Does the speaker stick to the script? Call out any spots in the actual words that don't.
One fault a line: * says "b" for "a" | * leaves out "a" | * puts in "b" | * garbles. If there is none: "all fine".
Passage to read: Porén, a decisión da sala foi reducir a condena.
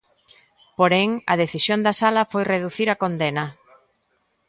all fine